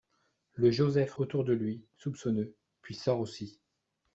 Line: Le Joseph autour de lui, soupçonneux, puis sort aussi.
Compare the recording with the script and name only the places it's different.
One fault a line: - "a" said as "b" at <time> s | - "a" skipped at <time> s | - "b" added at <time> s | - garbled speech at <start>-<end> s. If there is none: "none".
none